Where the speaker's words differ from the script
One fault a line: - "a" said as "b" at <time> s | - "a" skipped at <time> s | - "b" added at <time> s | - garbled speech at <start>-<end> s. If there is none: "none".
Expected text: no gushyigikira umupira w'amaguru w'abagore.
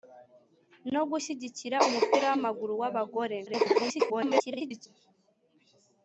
- garbled speech at 3.5-4.9 s